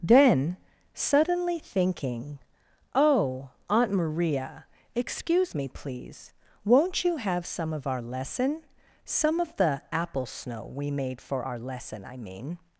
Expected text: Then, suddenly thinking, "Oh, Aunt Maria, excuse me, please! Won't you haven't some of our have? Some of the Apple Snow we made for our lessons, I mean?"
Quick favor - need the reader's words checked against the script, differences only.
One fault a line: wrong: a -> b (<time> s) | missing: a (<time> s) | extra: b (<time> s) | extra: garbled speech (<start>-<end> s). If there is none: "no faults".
wrong: haven't -> have (7.2 s)
wrong: have -> lesson (8.0 s)
wrong: lessons -> lesson (11.6 s)